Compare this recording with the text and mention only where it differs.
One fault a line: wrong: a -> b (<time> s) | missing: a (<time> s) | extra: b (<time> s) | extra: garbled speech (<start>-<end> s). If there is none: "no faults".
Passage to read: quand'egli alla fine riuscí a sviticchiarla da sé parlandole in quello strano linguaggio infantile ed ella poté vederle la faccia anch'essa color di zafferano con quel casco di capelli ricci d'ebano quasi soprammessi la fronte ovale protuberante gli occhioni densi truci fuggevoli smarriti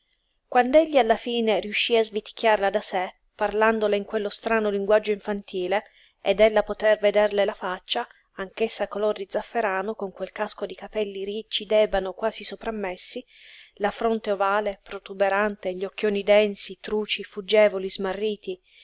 no faults